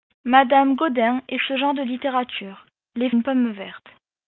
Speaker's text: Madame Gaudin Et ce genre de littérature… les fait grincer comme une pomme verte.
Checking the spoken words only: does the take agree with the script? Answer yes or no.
no